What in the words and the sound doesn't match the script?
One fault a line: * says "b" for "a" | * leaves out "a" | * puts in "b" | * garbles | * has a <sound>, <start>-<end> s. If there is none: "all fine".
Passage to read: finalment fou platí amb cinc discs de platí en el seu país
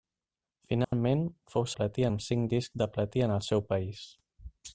* has a dropout, 0.8-0.9 s